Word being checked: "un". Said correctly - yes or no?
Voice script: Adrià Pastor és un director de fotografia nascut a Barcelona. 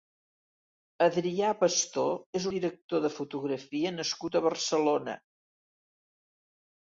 no